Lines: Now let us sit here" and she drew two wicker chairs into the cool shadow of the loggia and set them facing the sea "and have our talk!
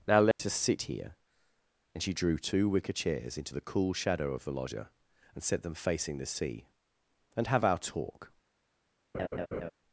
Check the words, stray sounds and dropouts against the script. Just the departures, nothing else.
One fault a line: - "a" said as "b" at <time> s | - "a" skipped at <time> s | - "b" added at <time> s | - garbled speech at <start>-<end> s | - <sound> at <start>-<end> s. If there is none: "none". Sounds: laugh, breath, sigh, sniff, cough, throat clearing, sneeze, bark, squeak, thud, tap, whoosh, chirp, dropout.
- dropout at 0.3-0.4 s
- laugh at 9.1-9.7 s